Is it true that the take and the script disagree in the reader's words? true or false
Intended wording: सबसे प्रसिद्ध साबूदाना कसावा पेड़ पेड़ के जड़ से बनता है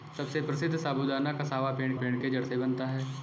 false